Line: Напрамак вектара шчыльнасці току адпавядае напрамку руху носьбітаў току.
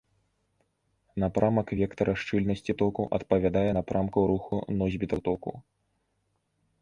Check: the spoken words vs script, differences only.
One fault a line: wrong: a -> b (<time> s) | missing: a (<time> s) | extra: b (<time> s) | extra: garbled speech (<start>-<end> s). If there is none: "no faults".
no faults